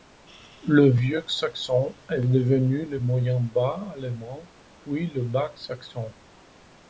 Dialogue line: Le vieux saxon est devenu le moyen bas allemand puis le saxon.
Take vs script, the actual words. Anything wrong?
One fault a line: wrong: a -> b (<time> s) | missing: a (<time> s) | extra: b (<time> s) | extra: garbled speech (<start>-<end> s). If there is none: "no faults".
extra: bas (5.2 s)